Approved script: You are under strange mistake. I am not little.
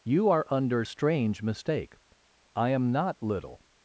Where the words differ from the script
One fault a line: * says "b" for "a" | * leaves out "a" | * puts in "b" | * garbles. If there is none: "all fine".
all fine